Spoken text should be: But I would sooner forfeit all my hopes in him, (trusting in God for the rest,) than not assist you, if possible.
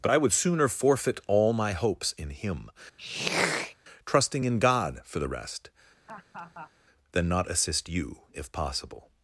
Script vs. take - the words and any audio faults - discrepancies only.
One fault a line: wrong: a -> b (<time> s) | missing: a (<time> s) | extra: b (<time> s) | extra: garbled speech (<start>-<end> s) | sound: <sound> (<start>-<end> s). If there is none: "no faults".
sound: throat clearing (3.0-3.8 s)
sound: laugh (6.1-6.7 s)